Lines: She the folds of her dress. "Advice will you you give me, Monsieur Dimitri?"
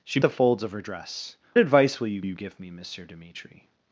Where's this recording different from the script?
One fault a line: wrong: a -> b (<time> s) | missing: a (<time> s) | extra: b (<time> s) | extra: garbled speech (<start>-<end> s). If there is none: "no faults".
no faults